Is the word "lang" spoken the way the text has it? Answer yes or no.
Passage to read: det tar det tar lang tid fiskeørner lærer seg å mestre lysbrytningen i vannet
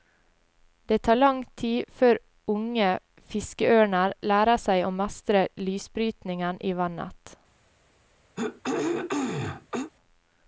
no